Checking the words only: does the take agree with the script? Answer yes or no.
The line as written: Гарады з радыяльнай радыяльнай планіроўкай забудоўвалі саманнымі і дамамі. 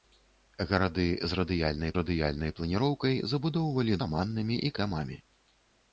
yes